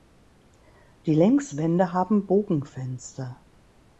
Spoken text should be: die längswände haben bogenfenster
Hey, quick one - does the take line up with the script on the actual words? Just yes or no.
yes